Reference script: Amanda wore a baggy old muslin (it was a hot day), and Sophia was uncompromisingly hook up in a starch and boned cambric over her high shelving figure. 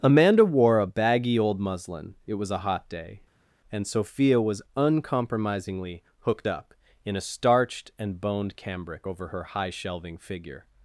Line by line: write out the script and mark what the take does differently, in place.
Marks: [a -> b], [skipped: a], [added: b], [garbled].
Amanda wore a baggy old muslin (it was a hot day), and Sophia was uncompromisingly [hook -> hooked] up in a [starch -> starched] and boned cambric over her high shelving figure.